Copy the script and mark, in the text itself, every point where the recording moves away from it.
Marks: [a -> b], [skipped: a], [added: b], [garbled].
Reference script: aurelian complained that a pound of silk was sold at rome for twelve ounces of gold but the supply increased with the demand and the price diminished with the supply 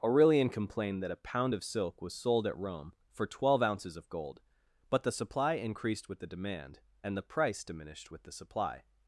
aurelian complained that a pound of silk was sold at rome for twelve ounces of gold but the supply increased with the demand and the price diminished with the supply